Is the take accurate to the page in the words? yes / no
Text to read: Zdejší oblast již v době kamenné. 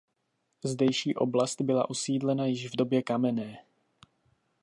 no